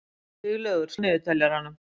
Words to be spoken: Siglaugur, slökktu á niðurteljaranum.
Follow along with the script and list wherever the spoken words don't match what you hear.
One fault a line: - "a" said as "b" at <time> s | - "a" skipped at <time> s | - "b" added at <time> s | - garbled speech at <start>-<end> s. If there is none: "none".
- "slökktu" skipped at 0.9 s